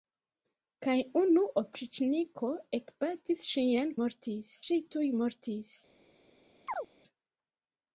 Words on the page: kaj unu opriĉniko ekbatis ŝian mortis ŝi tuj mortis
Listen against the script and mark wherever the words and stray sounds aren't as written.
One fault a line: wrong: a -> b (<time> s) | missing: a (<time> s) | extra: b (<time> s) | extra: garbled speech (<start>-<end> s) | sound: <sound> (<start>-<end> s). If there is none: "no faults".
sound: chirp (6.7-6.9 s)